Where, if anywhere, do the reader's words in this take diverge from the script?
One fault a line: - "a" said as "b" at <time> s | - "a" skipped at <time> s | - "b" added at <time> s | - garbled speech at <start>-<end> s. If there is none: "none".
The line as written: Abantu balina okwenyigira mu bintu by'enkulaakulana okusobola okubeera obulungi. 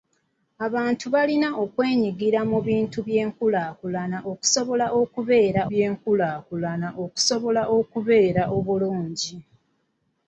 - "by'enkulaakulana okusobola okubeera" added at 5.7 s